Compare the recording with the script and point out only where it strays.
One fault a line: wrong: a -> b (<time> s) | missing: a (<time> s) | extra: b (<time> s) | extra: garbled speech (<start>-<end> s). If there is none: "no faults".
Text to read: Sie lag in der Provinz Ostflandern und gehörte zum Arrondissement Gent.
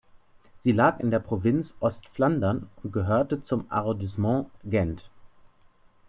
no faults